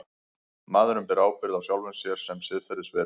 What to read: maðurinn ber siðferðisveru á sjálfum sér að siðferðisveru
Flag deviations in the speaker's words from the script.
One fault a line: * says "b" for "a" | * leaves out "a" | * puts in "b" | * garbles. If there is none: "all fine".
* says "ábyrgð" for "siðferðisveru"
* says "sem" for "að"